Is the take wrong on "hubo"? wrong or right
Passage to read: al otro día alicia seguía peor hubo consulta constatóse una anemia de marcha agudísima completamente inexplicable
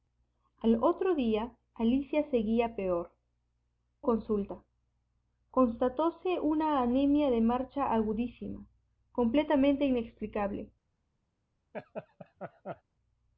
wrong